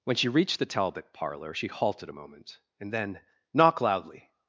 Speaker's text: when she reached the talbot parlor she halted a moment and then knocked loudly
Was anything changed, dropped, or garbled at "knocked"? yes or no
yes